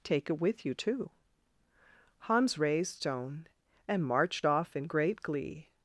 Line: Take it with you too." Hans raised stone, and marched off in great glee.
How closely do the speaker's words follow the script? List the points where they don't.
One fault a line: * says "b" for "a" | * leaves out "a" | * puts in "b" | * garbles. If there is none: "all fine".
all fine